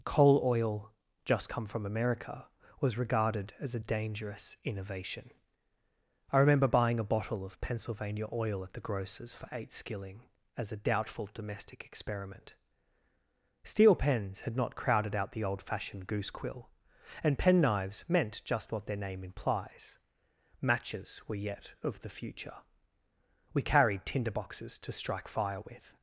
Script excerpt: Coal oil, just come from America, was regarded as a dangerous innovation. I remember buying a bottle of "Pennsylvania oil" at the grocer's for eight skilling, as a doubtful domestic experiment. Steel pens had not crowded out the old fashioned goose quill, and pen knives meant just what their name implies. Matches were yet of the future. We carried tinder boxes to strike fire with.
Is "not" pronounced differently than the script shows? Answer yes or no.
no